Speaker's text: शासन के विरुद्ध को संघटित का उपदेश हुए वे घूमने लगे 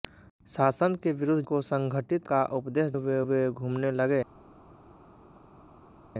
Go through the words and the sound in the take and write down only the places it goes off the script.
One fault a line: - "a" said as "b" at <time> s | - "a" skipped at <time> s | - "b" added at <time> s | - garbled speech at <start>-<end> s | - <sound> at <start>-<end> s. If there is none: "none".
none